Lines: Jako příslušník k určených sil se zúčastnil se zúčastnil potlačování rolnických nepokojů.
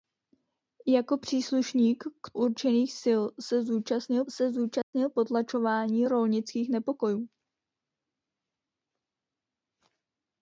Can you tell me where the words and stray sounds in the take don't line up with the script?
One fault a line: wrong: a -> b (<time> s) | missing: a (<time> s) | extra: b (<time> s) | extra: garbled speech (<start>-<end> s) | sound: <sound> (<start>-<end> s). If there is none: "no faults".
sound: dropout (4.8-4.9 s)